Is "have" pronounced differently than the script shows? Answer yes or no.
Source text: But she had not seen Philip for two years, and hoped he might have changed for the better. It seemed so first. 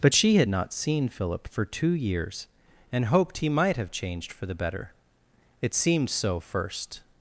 no